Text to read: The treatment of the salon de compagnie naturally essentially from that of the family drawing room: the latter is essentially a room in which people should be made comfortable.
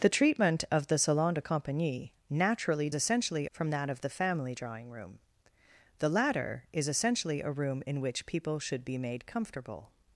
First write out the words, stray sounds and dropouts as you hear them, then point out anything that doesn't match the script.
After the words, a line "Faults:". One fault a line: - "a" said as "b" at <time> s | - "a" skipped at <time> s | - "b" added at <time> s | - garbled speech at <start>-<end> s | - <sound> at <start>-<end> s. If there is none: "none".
The treatment of the salon de compagnie naturally essentially from that of the family drawing room: the latter is essentially a room in which people should be made comfortable.
Faults:
none